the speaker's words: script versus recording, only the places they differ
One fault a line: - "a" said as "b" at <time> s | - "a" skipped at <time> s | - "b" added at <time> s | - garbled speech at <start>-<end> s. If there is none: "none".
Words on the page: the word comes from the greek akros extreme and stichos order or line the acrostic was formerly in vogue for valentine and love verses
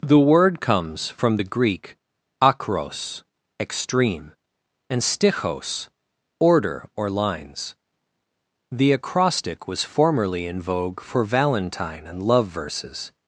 - "line" said as "lines" at 7.1 s